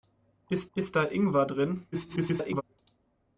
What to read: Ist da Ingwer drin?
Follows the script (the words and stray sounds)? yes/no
no